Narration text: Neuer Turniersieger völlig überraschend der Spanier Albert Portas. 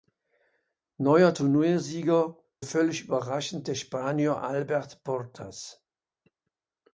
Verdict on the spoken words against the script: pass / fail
pass